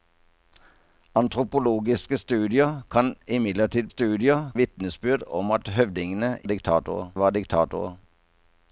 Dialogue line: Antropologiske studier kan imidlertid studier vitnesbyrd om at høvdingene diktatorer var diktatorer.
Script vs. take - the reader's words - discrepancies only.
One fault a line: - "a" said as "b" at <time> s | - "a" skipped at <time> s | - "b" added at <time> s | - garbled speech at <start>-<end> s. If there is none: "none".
none